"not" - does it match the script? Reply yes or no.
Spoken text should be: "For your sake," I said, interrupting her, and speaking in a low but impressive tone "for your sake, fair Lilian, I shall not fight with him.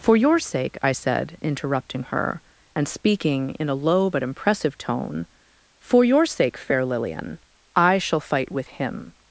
no